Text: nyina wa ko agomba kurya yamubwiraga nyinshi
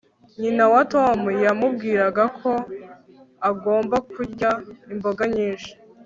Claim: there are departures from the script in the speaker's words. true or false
true